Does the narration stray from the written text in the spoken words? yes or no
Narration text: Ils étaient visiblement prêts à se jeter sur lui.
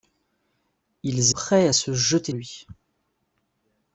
yes